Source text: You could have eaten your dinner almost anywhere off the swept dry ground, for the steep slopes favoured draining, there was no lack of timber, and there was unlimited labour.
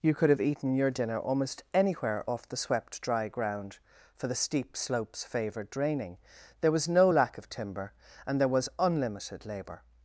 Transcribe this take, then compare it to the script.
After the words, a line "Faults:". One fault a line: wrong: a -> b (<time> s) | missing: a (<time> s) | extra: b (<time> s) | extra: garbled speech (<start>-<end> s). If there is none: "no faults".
You could have eaten your dinner almost anywhere off the swept dry ground, for the steep slopes favoured draining, there was no lack of timber, and there was unlimited labour.
Faults:
no faults